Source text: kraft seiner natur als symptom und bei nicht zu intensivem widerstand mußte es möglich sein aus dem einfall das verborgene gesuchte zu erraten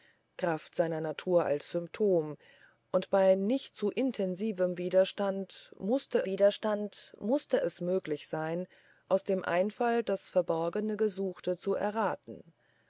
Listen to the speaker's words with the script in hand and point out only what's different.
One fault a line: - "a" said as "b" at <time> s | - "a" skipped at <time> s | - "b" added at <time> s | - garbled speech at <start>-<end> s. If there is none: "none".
- "widerstand mußte" added at 6.3 s